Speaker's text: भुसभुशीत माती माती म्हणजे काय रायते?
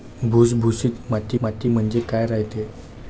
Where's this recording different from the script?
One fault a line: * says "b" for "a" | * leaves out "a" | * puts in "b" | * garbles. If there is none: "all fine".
all fine